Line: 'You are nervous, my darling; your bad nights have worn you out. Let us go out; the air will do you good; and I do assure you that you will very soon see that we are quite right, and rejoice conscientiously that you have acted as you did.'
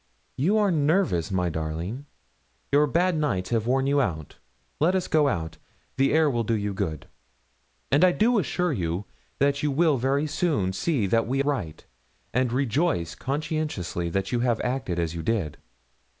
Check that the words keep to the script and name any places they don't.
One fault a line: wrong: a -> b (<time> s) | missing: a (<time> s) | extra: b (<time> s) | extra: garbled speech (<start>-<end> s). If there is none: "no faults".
missing: are quite (11.4 s)